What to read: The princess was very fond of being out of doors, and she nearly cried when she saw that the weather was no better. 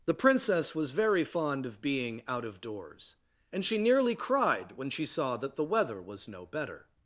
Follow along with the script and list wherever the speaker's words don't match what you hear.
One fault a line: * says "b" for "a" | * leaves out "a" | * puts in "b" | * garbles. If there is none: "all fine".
all fine